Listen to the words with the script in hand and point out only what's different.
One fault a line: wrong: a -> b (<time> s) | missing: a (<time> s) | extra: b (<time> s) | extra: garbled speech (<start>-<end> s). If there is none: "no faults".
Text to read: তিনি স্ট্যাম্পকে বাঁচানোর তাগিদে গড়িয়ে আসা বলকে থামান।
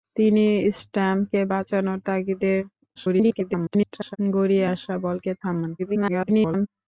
extra: garbled speech (3.0-4.2 s)
extra: garbled speech (5.8-6.7 s)